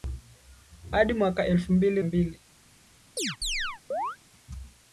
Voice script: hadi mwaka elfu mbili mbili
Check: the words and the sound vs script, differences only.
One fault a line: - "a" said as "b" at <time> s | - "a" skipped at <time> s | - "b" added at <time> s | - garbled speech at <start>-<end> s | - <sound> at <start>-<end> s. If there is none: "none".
- chirp at 3.2-4.2 s